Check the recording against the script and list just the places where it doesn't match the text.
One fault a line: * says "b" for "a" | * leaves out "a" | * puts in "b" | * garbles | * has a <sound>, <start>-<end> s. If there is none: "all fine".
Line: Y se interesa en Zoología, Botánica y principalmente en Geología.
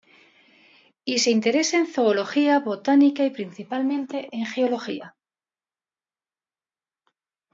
all fine